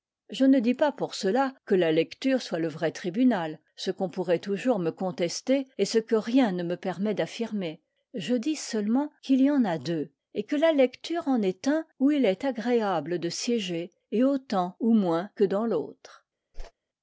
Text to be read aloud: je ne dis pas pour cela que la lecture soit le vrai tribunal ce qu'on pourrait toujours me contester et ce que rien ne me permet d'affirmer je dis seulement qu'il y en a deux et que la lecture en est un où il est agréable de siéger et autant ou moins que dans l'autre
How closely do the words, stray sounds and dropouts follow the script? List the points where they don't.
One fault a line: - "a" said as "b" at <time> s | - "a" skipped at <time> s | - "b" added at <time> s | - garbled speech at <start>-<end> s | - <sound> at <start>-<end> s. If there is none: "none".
- whoosh at 16.5-16.7 s